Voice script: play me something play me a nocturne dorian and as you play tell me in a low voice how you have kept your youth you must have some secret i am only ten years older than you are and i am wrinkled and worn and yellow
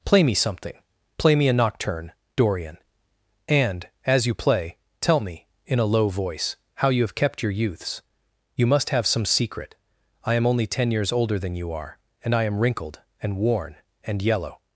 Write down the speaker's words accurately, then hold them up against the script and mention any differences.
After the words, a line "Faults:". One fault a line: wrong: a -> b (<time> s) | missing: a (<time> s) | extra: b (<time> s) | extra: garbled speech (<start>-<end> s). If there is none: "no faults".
play me something play me a nocturne dorian and as you play tell me in a low voice how you have kept your youths you must have some secret i am only ten years older than you are and i am wrinkled and worn and yellow
Faults:
wrong: youth -> youths (7.5 s)